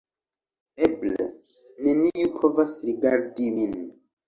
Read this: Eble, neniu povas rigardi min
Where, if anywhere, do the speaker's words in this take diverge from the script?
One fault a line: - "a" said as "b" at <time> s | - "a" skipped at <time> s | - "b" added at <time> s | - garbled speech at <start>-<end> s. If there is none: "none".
none